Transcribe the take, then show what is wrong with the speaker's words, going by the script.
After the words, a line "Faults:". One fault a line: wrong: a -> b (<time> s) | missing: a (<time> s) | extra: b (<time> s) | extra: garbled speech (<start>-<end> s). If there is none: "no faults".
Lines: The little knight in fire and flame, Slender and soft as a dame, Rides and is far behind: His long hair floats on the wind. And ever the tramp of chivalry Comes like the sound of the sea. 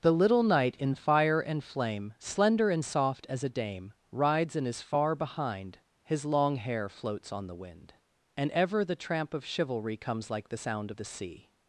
The little knight in fire and flame, Slender and soft as a dame, Rides and is far behind: His long hair floats on the wind. And ever the tramp of chivalry Comes like the sound of the sea.
Faults:
no faults